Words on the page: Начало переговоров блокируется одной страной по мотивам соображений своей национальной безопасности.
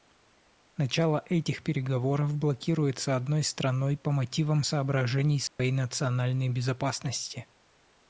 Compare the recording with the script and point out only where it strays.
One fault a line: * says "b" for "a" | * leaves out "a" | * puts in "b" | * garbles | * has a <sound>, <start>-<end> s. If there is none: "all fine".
* puts in "этих"
* has a dropout, 5.5-5.6 s